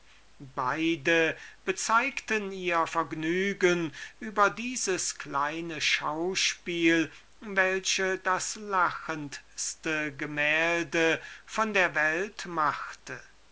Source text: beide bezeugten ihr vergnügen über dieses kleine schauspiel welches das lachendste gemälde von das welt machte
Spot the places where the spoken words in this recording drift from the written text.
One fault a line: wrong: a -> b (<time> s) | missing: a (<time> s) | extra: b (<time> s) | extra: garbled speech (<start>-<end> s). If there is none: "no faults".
wrong: das -> der (11.7 s)